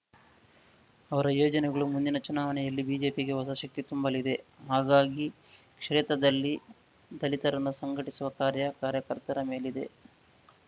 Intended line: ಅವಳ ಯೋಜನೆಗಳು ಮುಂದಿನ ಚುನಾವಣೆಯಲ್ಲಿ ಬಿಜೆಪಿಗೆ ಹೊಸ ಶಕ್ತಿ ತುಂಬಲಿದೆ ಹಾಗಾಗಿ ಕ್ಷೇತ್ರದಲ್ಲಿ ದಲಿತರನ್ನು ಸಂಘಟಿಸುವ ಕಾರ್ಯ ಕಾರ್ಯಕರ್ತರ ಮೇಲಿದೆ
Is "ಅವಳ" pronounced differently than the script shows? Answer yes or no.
yes